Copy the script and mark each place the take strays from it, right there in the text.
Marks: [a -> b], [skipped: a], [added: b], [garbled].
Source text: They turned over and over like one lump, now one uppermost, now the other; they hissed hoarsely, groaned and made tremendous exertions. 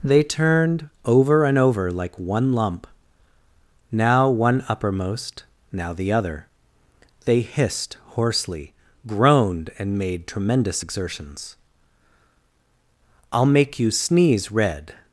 They turned over and over like one lump, now one uppermost, now the other; they hissed hoarsely, groaned and made tremendous exertions. [added: I'll make you sneeze red]